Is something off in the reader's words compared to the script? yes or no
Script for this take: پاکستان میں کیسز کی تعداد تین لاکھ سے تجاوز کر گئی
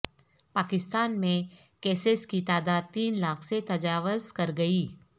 no